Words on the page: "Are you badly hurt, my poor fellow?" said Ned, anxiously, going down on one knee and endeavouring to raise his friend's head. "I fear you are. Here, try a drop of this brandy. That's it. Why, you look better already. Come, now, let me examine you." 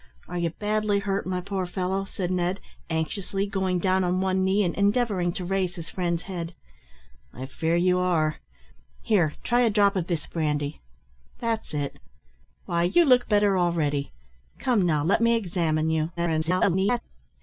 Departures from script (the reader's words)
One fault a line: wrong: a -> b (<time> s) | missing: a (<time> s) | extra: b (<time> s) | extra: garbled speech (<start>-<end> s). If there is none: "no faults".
extra: garbled speech (16.2-17.0 s)